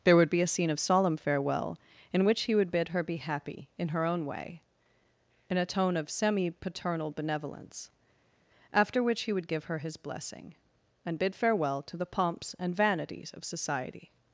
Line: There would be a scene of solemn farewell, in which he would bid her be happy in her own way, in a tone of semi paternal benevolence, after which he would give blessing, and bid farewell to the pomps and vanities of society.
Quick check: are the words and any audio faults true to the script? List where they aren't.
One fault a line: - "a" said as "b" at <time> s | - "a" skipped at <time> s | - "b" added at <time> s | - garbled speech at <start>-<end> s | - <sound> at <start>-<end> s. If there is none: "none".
- "her his" added at 9.7 s